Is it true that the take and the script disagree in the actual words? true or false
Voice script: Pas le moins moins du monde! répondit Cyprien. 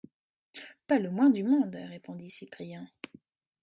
true